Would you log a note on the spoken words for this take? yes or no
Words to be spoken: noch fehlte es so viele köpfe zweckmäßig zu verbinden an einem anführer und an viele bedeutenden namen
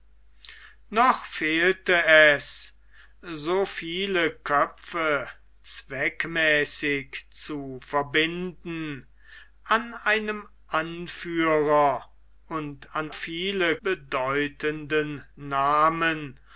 no